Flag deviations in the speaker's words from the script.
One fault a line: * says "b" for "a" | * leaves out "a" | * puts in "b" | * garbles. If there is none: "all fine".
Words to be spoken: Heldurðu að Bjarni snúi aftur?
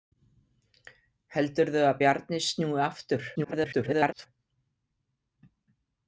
* garbles